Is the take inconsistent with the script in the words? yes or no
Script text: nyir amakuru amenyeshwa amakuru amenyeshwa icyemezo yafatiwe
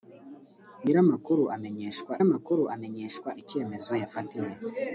no